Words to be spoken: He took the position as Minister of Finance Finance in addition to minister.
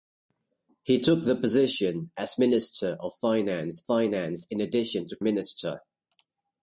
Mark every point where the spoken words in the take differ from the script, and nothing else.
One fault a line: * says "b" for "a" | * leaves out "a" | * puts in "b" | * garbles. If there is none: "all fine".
all fine